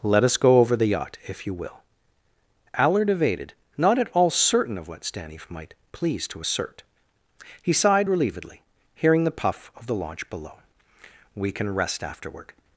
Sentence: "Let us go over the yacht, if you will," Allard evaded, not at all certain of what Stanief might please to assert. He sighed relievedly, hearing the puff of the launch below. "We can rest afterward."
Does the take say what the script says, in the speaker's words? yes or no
yes